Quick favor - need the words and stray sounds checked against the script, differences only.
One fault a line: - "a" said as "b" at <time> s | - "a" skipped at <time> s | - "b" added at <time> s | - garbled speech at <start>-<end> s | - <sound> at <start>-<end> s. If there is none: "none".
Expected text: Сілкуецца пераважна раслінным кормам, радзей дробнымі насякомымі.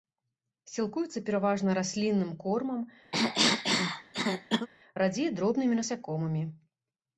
- cough at 3.1-4.7 s